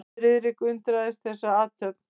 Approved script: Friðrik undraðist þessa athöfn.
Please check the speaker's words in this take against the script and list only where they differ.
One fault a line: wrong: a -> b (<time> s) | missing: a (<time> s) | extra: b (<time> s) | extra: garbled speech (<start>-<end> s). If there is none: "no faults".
no faults